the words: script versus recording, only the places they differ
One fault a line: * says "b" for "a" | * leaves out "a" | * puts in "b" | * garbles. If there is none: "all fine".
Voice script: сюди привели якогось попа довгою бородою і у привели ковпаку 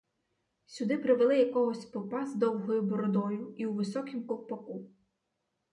* puts in "з"
* says "високім" for "привели"